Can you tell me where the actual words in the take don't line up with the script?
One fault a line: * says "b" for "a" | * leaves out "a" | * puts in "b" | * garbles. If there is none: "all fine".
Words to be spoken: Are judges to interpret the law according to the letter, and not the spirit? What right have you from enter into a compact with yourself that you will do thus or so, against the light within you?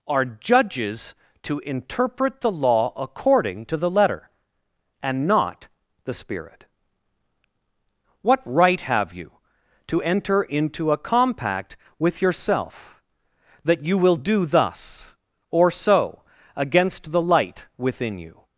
* says "to" for "from"